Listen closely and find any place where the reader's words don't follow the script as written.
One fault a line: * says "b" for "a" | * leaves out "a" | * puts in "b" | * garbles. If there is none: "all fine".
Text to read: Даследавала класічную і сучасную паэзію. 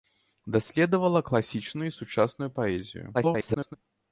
* garbles